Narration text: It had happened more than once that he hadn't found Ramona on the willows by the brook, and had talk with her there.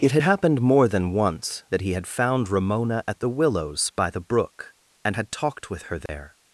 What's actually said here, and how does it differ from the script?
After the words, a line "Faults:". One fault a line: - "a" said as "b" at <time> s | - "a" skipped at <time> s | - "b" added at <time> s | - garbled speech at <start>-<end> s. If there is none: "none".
It had happened more than once that he had found Ramona at the willows by the brook, and had talked with her there.
Faults:
- "hadn't" said as "had" at 1.9 s
- "on" said as "at" at 3.1 s
- "talk" said as "talked" at 5.3 s